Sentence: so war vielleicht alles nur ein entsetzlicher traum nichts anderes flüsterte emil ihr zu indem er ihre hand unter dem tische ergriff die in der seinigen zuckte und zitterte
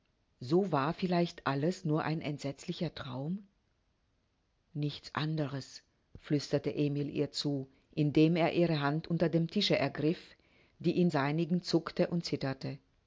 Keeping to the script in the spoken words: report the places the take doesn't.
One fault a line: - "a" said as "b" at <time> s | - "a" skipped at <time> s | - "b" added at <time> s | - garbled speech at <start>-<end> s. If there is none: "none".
- "der" skipped at 11.1 s